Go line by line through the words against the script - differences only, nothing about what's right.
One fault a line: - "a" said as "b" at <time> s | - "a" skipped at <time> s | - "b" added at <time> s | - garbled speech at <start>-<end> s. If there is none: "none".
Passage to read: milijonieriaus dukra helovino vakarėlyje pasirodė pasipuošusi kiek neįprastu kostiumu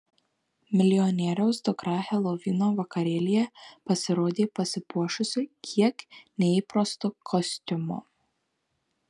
none